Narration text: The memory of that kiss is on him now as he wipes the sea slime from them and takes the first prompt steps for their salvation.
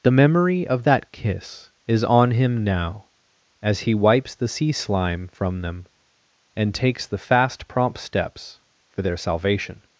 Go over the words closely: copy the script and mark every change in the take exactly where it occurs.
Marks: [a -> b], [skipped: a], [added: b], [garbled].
The memory of that kiss is on him now as he wipes the sea slime from them and takes the [first -> fast] prompt steps for their salvation.